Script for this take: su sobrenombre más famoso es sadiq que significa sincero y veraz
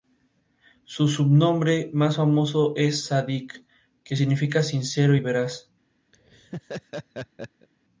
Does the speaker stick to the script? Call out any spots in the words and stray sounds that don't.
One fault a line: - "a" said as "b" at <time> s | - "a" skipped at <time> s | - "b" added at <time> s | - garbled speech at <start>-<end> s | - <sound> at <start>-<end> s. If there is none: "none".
- laugh at 6.1-7.7 s